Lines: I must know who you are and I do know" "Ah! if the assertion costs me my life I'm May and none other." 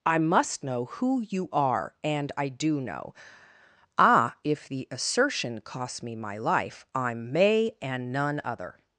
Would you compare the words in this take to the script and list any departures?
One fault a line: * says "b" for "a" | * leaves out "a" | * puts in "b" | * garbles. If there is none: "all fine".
all fine